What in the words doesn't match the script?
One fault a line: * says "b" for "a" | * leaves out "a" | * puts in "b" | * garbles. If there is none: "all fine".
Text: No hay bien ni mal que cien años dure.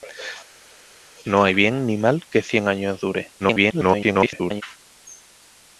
* garbles